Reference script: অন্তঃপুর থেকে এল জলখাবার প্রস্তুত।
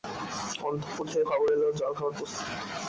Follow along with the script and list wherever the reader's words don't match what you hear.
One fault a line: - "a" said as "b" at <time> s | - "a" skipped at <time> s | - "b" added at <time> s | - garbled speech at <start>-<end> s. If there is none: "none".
- "খবর" added at 1.3 s